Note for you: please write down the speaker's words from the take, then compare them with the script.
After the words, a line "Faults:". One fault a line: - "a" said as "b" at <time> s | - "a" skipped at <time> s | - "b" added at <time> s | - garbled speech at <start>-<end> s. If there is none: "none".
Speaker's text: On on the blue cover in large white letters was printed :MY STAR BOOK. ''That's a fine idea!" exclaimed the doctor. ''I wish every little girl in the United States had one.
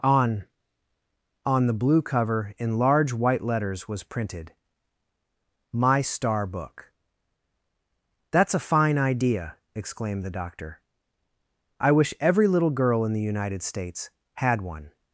On on the blue cover in large white letters was printed :MY STAR BOOK. ''That's a fine idea!" exclaimed the doctor. ''I wish every little girl in the United States had one.
Faults:
none